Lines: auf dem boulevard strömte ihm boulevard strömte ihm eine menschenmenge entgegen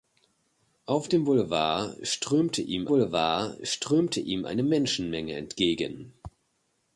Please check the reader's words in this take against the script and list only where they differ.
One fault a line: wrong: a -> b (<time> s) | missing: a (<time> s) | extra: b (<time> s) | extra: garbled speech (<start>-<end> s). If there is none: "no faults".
no faults